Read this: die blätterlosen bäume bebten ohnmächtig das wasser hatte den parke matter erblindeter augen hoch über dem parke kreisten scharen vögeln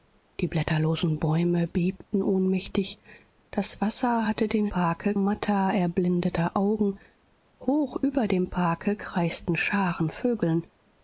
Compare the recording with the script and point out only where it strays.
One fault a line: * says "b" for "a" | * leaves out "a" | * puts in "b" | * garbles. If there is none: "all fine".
all fine